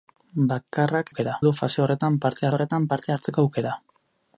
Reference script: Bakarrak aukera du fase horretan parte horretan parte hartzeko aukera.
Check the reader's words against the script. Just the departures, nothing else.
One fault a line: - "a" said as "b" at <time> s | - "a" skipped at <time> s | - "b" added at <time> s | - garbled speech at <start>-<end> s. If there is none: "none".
none